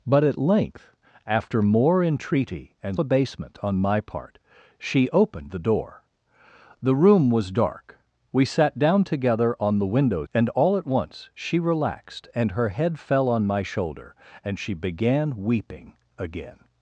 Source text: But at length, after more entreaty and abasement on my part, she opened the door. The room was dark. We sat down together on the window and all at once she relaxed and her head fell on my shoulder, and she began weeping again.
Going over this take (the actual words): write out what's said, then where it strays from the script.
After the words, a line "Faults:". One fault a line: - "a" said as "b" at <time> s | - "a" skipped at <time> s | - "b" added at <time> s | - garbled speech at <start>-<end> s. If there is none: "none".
But at length, after more entreaty and abasement on my part, she opened the door. The room was dark. We sat down together on the window and all at once she relaxed and her head fell on my shoulder, and she began weeping again.
Faults:
none